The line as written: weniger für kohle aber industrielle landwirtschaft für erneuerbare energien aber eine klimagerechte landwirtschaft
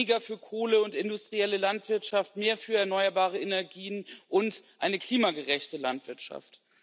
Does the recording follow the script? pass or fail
fail